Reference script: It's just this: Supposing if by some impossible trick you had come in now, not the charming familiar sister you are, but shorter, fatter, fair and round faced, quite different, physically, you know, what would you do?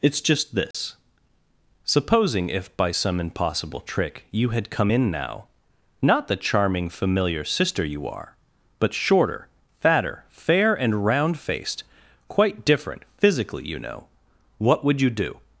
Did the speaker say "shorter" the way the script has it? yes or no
yes